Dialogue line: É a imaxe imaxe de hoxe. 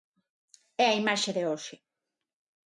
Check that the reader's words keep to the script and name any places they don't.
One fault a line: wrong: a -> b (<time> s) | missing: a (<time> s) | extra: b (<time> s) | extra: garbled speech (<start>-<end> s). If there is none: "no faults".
missing: imaxe (1.3 s)